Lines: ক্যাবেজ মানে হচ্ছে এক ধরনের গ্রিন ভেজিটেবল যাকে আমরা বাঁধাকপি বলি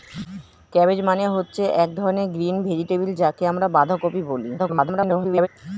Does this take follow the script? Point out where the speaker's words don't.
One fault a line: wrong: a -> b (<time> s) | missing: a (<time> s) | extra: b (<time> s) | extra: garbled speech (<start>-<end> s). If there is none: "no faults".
extra: garbled speech (4.6-5.5 s)